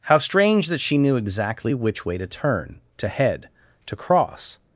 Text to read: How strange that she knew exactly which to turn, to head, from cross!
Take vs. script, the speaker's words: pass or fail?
fail